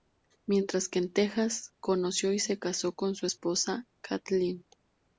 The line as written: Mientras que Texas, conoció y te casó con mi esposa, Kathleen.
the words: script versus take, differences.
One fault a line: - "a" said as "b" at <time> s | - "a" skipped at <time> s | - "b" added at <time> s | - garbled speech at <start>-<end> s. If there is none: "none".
- "en" added at 1.0 s
- "te" said as "se" at 2.4 s
- "mi" said as "su" at 3.1 s